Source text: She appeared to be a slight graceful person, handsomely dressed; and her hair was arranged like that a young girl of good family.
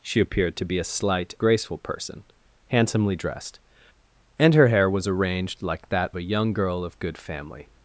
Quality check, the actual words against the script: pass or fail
pass